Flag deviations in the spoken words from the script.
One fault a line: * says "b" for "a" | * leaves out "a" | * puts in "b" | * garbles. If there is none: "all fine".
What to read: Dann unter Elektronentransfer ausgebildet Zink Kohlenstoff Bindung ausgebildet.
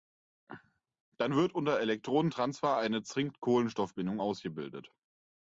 * puts in "wird"
* says "eine" for "ausgebildet"